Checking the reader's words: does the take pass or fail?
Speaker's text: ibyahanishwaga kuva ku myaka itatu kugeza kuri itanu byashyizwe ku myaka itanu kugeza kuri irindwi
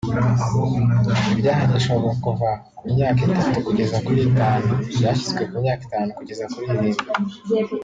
pass